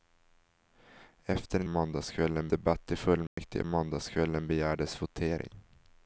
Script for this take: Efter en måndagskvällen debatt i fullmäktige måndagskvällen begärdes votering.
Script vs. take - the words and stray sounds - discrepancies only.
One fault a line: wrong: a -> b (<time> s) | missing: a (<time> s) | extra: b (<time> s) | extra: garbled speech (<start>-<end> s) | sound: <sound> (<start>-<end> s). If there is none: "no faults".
sound: dropout (3.3-3.4 s)